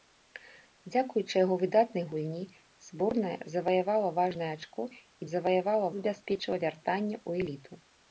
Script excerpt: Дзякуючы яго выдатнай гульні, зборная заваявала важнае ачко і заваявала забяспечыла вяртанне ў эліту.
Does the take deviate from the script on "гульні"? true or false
false